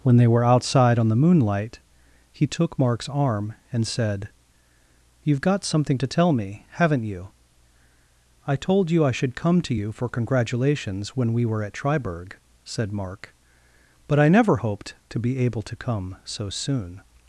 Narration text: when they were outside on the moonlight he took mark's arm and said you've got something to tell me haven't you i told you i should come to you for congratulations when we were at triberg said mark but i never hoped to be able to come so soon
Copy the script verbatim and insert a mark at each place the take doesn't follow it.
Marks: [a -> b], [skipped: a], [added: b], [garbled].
when they were outside on the moonlight he took mark's arm and said you've got something to tell me haven't you i told you i should come to you for congratulations when we were at triberg said mark but i never hoped to be able to come so soon